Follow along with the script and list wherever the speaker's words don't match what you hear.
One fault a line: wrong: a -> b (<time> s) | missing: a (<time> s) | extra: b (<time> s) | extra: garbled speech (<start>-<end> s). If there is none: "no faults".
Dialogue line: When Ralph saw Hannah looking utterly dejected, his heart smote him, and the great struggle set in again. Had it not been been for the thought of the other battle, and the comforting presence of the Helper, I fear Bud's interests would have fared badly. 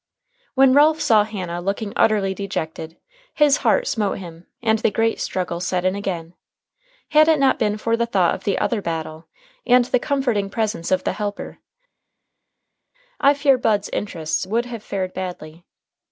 missing: been (7.8 s)